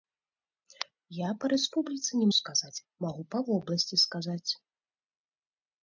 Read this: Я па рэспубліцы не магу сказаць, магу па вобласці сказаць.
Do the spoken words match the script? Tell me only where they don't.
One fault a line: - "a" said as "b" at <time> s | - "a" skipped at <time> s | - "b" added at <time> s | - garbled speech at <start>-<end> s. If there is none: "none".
- "магу" skipped at 2.3 s